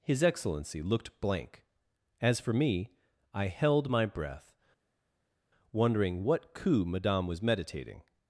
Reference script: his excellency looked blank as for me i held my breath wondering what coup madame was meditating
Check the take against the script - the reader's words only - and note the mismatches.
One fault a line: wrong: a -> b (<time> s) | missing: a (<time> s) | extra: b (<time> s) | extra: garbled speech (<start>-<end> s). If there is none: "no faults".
no faults